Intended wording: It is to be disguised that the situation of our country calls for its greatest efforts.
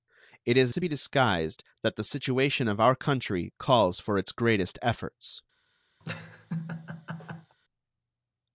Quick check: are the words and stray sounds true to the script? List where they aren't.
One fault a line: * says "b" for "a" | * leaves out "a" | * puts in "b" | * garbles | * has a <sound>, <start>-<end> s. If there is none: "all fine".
* has a laugh, 6.0-7.6 s